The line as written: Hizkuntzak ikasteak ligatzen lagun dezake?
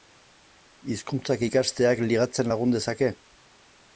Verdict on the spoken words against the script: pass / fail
pass